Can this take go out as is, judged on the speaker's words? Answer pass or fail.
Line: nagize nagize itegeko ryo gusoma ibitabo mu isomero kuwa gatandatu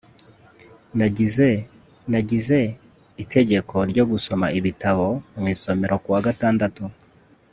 pass